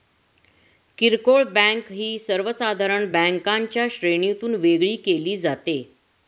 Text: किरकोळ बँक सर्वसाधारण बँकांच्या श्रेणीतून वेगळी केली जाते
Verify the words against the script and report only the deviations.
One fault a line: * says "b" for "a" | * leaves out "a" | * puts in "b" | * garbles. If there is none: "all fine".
* puts in "ही"